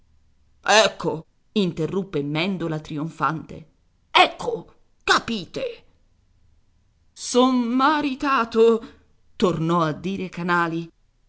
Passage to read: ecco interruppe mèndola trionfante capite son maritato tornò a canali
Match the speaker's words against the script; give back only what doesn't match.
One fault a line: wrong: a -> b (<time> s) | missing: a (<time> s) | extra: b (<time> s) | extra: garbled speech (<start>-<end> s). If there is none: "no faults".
extra: ecco (4.1 s)
extra: dire (9.9 s)